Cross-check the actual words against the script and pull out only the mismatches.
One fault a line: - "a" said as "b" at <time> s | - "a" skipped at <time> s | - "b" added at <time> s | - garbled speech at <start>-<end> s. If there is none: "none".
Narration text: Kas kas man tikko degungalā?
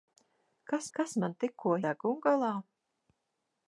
none